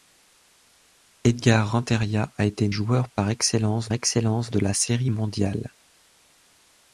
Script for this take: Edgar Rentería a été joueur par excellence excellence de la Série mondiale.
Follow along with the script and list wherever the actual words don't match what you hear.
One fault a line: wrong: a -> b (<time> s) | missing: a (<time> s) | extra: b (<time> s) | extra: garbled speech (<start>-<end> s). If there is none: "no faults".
no faults